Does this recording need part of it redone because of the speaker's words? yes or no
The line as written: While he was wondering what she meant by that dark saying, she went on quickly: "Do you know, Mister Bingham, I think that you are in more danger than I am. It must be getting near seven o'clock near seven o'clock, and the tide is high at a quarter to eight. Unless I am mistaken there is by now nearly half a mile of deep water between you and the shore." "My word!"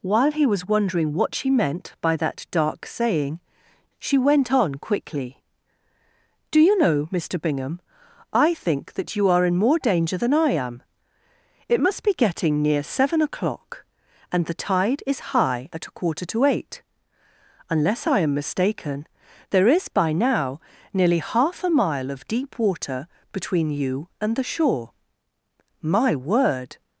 yes